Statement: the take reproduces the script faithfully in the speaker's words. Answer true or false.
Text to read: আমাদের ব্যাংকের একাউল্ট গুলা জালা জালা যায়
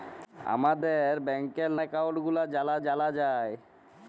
true